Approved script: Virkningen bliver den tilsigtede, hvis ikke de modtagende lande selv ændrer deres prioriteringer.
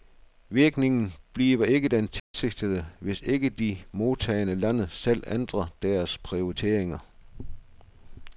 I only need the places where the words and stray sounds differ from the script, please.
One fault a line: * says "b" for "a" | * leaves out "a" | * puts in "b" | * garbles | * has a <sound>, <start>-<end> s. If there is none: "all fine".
* puts in "ikke"
* has a dropout, 2.2-2.3 s